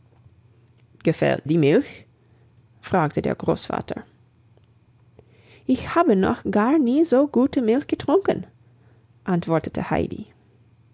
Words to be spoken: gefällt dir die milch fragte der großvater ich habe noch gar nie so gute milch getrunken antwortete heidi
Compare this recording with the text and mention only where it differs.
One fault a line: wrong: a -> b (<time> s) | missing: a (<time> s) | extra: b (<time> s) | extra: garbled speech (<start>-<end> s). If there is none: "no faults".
missing: dir (1.5 s)